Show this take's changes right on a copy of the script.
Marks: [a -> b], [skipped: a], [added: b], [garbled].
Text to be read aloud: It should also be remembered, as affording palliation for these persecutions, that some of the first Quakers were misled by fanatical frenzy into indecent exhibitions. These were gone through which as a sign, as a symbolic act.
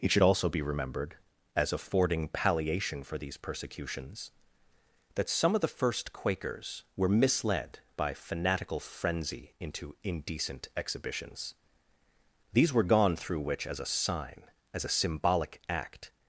It should also be remembered, as affording palliation for these persecutions, that some of the first Quakers were misled by fanatical frenzy into indecent exhibitions. These were gone through which as a sign, as a symbolic act.